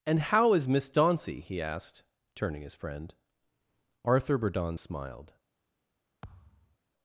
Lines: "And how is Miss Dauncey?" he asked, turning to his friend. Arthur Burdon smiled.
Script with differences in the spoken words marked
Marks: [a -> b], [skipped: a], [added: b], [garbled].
"And how is Miss Dauncey?" he asked, turning [skipped: to] his friend. Arthur Burdon smiled.